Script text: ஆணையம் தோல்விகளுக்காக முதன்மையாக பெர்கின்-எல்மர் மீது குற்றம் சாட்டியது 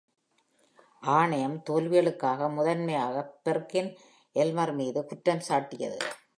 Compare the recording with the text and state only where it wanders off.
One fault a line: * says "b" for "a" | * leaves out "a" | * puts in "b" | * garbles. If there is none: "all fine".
all fine